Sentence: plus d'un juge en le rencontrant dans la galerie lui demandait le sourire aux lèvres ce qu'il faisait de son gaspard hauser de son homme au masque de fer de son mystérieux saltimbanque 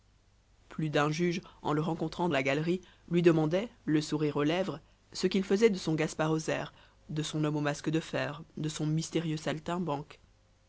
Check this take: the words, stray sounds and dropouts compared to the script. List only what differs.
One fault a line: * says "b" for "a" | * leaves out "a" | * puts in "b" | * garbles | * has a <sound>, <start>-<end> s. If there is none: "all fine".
* leaves out "dans"